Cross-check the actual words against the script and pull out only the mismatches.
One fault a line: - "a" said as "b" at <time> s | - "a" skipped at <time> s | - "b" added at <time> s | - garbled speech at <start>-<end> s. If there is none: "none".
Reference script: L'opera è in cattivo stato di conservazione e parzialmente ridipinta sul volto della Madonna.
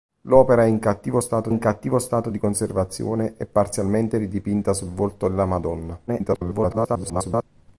- "in cattivo stato" added at 1.5 s
- garbled speech at 6.1-7.4 s